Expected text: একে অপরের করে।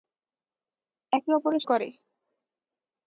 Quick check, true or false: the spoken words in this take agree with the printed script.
true